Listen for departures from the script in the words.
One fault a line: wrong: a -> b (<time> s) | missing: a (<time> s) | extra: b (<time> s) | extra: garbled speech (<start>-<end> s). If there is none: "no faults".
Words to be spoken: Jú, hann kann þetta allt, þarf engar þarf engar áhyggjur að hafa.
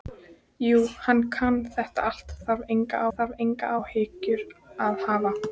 no faults